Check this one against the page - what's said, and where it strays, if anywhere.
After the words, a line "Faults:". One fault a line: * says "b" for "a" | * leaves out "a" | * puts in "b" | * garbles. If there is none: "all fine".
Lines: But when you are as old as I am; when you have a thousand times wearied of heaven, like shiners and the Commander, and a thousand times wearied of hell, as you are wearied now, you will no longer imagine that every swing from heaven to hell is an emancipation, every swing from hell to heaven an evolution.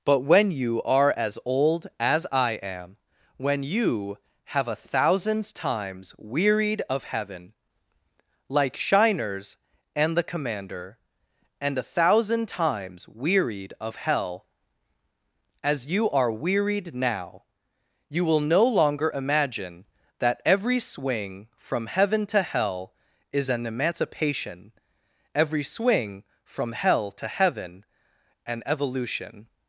But when you are as old as I am; when you have a thousand times wearied of heaven, like shiners and the Commander, and a thousand times wearied of hell, as you are wearied now, you will no longer imagine that every swing from heaven to hell is an emancipation, every swing from hell to heaven an evolution.
Faults:
all fine